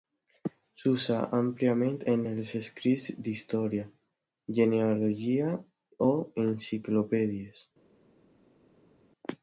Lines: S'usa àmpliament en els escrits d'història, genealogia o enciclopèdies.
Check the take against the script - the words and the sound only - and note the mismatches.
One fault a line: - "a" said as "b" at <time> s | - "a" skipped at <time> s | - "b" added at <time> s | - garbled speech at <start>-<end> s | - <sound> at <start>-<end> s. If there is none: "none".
none